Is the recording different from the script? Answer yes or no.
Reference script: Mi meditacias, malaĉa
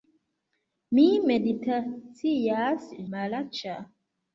no